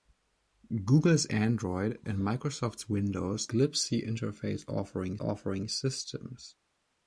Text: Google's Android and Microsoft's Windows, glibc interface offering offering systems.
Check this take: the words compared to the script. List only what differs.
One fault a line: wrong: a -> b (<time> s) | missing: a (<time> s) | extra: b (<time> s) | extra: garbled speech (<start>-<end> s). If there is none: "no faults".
no faults